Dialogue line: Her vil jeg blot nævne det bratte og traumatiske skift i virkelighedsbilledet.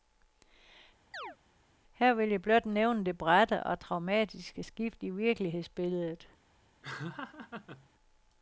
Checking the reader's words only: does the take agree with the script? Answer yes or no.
yes